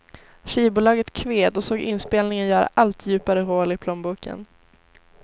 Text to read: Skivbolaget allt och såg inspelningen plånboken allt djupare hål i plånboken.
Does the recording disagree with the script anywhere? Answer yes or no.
yes